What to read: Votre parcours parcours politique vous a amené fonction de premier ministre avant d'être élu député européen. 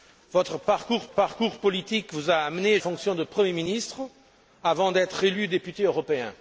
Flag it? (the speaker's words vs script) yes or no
no